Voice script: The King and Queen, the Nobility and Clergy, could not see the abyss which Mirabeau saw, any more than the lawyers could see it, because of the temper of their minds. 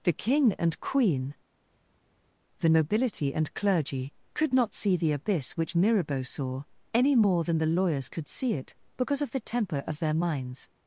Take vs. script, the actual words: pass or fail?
pass